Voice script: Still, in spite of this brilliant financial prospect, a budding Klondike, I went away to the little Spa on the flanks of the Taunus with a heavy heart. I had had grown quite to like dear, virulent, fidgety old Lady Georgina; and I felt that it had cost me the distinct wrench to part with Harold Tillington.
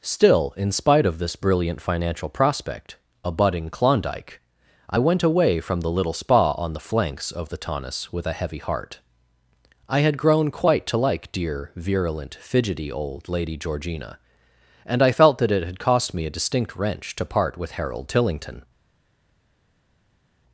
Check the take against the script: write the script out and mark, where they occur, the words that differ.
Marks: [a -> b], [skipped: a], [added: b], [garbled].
Still, in spite of this brilliant financial prospect, a budding Klondike, I went away [to -> from] the little Spa on the flanks of the Taunus with a heavy heart. I had [skipped: had] grown quite to like dear, virulent, fidgety old Lady Georgina; and I felt that it had cost me [the -> a] distinct wrench to part with Harold Tillington.